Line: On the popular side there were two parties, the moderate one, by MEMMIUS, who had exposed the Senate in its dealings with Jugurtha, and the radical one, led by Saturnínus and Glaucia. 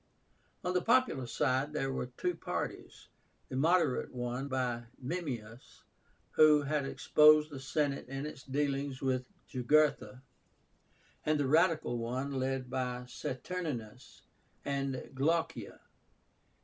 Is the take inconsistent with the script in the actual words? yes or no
no